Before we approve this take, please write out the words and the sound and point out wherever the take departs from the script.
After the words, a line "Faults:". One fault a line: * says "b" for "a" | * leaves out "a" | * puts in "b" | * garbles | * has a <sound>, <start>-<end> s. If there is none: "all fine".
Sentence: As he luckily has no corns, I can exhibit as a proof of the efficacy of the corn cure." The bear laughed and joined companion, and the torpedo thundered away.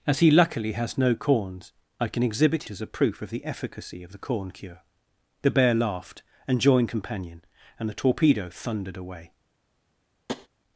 As he luckily has no corns, I can exhibit as a proof of the efficacy of the corn cure." The bear laughed and joined companion, and the torpedo thundered away.
Faults:
* has a tap, 10.3-10.5 s